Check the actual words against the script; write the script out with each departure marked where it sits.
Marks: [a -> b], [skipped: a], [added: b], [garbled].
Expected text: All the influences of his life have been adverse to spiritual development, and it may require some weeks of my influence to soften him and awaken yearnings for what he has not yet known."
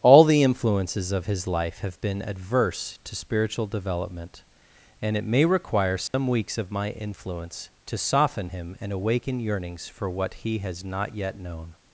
All the influences of his life have been adverse to spiritual development, and it may require some weeks of my influence to soften him and awaken yearnings for what he has not yet known."